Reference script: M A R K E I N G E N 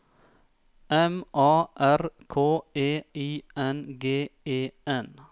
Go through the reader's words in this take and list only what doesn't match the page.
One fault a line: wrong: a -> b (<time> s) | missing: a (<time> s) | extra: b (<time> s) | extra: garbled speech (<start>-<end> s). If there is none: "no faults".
no faults